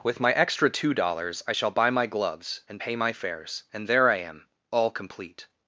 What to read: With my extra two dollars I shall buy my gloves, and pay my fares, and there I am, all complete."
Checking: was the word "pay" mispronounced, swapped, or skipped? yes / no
no